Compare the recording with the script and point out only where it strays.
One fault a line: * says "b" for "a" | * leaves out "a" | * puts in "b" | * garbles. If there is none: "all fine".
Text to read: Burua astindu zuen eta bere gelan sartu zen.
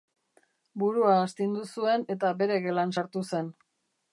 all fine